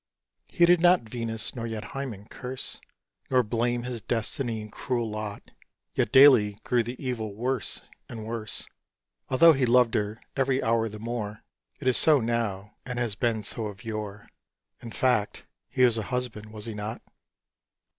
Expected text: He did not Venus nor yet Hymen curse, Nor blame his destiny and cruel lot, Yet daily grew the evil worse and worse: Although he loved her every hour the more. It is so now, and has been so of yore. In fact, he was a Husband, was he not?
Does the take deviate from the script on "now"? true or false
false